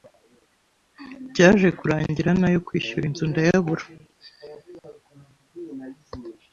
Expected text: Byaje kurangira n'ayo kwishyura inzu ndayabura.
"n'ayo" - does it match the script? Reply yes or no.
yes